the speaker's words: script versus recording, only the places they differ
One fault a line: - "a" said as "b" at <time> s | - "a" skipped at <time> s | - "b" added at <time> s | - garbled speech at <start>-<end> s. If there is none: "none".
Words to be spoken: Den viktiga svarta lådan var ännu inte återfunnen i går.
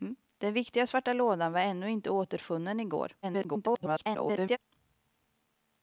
- garbled speech at 3.2-4.6 s